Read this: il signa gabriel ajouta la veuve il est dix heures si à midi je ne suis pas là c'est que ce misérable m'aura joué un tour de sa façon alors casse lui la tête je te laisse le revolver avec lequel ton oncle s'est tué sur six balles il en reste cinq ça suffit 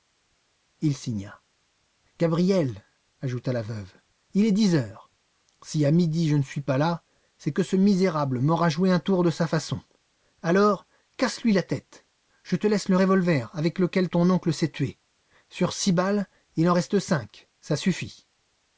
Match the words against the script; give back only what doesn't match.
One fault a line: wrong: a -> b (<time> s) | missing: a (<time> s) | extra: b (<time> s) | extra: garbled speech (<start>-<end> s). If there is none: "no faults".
no faults